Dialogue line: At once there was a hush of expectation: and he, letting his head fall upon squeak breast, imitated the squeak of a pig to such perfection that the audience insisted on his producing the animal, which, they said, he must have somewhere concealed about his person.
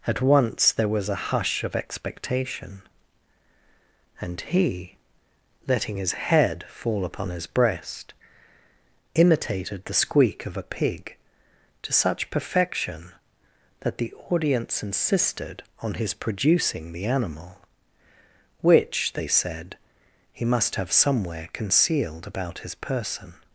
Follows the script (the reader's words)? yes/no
no